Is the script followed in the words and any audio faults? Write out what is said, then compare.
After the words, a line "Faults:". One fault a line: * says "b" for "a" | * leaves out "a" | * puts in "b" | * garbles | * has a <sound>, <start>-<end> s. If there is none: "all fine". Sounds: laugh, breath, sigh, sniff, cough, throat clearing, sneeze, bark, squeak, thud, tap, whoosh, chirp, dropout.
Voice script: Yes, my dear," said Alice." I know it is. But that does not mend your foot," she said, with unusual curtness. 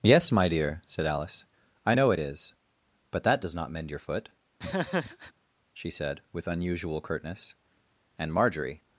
Yes, my dear," said Alice." I know it is. But that does not mend your foot," she said, with unusual curtness. And Marjorie
Faults:
* has a laugh, 4.6-5.3 s
* puts in "And Marjorie"